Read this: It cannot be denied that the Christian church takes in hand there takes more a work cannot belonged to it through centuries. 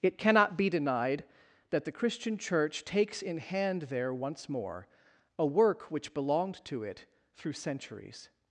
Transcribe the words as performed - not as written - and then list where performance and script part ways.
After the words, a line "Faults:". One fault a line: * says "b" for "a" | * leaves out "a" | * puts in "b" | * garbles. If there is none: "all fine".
It cannot be denied that the Christian church takes in hand there once more a work which belonged to it through centuries.
Faults:
* says "once" for "takes"
* says "which" for "cannot"